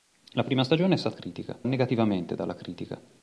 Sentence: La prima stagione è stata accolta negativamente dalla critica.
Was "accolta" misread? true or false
true